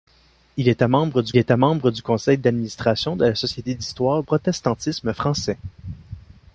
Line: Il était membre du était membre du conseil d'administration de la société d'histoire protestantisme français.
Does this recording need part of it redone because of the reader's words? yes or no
no